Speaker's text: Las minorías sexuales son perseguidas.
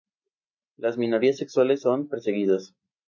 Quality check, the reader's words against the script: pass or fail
pass